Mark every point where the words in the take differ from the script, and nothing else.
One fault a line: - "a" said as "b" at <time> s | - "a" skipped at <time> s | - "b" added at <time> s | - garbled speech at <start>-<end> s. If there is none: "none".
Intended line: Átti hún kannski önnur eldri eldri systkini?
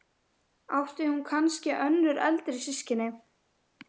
- "eldri" skipped at 2.6 s